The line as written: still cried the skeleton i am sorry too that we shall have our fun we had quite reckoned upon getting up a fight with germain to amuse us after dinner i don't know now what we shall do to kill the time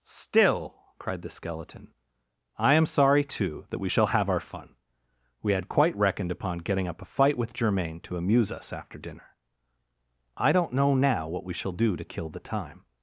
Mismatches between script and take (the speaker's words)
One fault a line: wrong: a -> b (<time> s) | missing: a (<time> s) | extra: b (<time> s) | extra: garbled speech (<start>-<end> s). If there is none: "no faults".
no faults